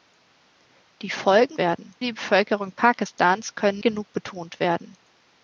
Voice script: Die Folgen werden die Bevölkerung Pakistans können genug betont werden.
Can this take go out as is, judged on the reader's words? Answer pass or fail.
pass